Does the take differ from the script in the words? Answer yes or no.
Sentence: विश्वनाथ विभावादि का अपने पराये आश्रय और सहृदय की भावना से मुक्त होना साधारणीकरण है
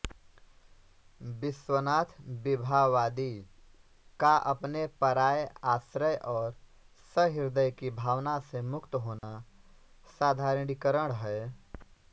no